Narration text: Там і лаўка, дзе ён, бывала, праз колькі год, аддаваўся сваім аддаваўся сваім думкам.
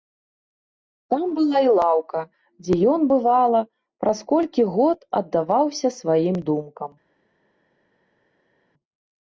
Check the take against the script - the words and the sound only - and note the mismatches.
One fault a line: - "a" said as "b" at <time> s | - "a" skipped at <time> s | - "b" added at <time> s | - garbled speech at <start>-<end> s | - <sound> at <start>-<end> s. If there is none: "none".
- "была" added at 1.4 s
- "аддаваўся сваім" skipped at 6.4 s